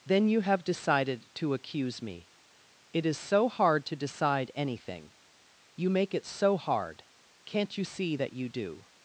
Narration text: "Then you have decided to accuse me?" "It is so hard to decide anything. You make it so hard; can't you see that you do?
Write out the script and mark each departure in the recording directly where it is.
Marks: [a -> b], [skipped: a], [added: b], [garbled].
"Then you have decided to accuse me?" "It is so hard to decide anything. You make it so hard; can't you see that you do?